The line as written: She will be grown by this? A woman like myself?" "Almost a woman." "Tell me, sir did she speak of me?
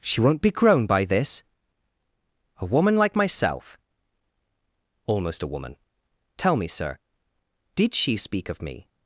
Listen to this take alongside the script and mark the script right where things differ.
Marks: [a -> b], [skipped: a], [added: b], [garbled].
She [will -> won't] be grown by this? A woman like myself?" "Almost a woman." "Tell me, sir did she speak of me?